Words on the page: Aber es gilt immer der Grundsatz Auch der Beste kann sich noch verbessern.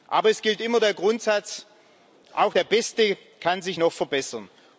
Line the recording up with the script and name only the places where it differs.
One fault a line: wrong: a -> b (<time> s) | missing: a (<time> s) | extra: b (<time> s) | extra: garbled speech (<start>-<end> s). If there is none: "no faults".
no faults